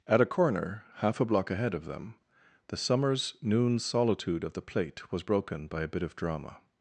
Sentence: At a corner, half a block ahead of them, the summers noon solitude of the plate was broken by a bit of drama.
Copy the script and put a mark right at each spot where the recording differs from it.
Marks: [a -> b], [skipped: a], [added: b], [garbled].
At a corner, half a block ahead of them, the summers noon solitude of the plate was broken by a bit of drama.